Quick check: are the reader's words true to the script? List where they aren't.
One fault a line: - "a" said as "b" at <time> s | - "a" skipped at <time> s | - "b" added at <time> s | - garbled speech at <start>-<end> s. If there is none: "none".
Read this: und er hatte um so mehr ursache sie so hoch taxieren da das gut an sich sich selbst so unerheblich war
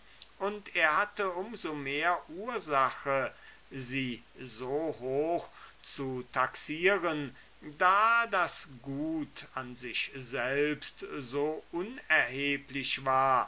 - "zu" added at 5.8 s
- "sich" skipped at 10.1 s